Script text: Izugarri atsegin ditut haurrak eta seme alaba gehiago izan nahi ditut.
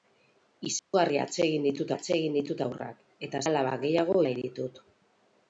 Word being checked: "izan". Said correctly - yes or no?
no